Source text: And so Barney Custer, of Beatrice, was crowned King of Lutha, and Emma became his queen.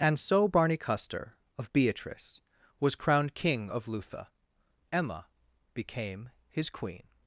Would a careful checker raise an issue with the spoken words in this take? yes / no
yes